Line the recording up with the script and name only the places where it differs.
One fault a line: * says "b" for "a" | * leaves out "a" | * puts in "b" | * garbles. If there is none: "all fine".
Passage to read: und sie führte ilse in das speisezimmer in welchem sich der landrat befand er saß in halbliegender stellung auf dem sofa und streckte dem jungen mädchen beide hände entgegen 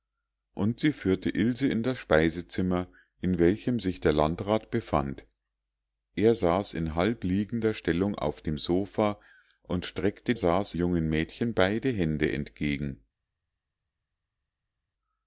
* says "saß" for "dem"